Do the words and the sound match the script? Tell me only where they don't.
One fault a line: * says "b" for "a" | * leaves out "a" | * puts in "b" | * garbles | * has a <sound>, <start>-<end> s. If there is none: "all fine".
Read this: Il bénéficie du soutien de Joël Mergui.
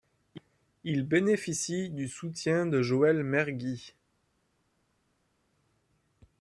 all fine